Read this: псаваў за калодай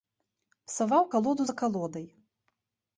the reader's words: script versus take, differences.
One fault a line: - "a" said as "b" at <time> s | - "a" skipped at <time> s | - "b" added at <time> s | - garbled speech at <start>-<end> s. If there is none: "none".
- "калоду" added at 1.1 s